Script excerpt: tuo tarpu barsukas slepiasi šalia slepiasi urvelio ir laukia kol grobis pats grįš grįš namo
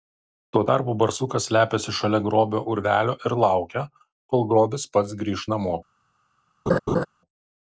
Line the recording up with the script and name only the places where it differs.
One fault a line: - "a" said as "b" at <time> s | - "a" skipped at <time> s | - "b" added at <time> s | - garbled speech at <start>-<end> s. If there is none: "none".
- "slepiasi" said as "grobio" at 2.3 s
- "grįš" skipped at 5.5 s